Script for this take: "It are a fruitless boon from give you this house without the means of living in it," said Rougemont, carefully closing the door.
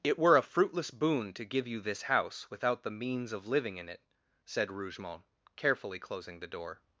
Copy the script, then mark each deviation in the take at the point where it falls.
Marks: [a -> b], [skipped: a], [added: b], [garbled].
"It [are -> were] a fruitless boon [from -> to] give you this house without the means of living in it," said Rougemont, carefully closing the door.